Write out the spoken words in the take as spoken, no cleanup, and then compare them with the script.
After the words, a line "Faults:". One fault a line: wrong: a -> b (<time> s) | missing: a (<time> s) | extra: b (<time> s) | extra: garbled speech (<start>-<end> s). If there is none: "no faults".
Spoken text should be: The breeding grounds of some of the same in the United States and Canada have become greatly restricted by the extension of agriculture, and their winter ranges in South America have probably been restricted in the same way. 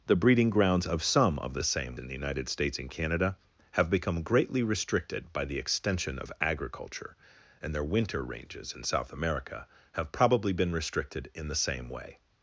The breeding grounds of some of the same in the United States and Canada have become greatly restricted by the extension of agriculture, and their winter ranges in South America have probably been restricted in the same way.
Faults:
no faults